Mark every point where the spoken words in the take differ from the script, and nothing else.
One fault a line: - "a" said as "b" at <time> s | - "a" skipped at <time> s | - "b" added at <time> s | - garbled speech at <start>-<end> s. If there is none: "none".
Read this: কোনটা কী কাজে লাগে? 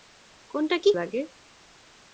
- "কাজে" skipped at 0.9 s